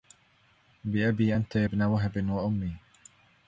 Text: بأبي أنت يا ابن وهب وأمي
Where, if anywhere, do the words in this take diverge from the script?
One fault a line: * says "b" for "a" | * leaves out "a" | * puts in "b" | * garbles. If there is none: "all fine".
all fine